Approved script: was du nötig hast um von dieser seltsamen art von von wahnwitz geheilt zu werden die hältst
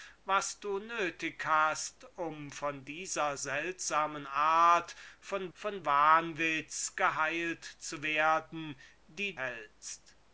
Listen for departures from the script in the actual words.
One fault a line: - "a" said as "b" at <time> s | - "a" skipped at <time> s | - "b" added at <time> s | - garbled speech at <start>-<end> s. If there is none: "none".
none